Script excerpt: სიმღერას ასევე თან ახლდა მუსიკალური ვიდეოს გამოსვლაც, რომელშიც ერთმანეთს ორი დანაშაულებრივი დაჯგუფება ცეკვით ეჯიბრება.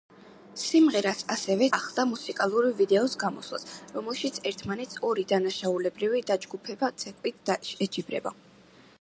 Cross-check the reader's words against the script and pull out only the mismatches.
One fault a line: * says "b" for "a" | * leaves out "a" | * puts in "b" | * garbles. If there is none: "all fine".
* leaves out "თან"